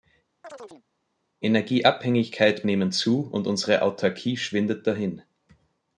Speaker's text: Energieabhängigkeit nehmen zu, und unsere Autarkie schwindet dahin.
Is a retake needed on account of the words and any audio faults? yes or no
yes